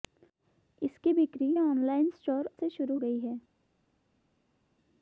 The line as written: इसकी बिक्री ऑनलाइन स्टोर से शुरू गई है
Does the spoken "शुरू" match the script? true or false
true